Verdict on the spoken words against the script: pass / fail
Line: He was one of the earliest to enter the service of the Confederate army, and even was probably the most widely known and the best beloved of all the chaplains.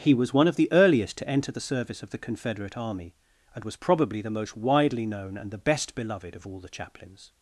fail